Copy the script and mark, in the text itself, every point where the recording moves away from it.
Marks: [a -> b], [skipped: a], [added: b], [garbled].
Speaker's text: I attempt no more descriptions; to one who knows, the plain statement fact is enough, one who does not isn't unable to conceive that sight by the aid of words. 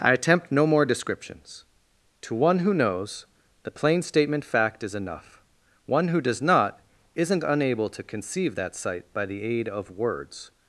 I attempt no more descriptions; to one who knows, the plain statement fact is enough, one who does not isn't unable to conceive that sight by the aid of words.